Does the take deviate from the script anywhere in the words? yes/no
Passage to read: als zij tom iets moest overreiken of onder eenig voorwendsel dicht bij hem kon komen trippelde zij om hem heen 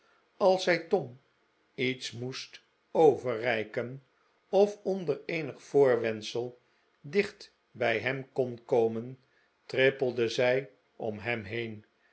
no